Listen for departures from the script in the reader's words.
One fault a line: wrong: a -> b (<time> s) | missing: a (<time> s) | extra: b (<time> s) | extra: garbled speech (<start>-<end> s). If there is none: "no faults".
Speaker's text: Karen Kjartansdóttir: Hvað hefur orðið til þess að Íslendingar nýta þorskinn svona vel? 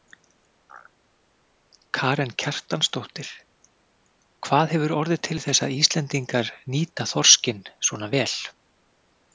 no faults